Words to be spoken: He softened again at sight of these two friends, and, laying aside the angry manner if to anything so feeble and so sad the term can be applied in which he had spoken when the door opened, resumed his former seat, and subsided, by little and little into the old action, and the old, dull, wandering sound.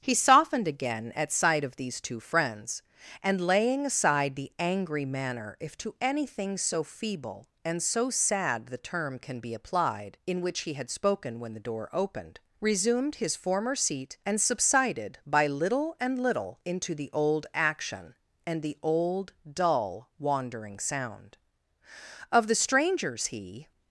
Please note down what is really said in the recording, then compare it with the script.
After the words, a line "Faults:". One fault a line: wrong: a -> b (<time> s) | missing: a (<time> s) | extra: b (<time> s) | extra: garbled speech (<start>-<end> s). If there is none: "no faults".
He softened again at sight of these two friends, and, laying aside the angry manner if to anything so feeble and so sad the term can be applied in which he had spoken when the door opened, resumed his former seat, and subsided, by little and little into the old action, and the old, dull, wandering sound. Of the strangers, he
Faults:
extra: Of the strangers he (22.3 s)